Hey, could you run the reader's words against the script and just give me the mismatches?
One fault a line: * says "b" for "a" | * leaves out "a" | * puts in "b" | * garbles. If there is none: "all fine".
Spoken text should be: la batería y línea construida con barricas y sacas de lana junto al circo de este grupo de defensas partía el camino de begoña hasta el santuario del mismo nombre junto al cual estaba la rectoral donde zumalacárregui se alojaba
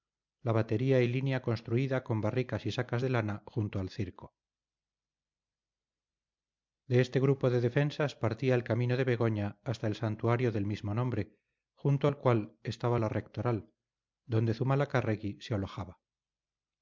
all fine